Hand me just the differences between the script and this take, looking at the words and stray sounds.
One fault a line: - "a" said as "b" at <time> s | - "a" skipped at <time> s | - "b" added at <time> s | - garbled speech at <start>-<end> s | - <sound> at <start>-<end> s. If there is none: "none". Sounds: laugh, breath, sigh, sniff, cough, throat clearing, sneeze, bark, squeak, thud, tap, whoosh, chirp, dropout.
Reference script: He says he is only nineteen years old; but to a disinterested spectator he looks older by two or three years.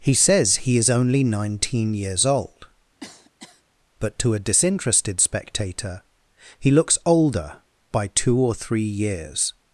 - cough at 3.0-3.6 s